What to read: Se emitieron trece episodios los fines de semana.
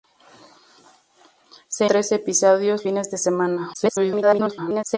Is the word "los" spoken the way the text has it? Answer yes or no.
no